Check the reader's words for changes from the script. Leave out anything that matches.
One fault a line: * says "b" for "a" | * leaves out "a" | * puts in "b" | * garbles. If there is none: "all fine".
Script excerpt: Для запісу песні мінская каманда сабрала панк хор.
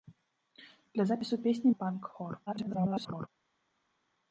* leaves out "мінская каманда сабрала"
* garbles